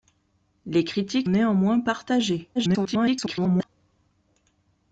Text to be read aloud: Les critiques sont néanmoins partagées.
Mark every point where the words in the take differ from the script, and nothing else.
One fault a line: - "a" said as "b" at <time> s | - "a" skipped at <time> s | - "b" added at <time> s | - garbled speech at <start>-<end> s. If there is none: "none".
- "sont" skipped at 1.3 s
- garbled speech at 2.5-3.7 s